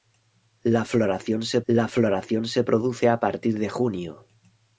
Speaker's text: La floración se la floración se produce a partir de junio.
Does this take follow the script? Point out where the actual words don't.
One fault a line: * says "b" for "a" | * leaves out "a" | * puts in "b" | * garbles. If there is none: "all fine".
all fine